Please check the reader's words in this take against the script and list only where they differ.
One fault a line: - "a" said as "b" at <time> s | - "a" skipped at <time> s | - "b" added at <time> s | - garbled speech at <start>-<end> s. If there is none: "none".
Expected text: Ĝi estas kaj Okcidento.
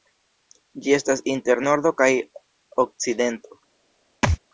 - "inter Nordo" added at 1.4 s